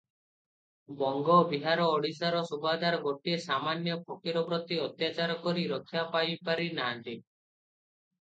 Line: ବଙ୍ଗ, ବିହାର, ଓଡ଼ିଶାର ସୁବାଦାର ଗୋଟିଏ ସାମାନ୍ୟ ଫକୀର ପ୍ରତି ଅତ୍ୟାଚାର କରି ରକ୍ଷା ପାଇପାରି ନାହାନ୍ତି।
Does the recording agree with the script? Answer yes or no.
yes